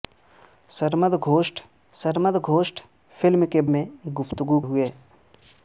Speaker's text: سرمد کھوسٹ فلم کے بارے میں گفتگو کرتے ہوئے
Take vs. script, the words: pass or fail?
fail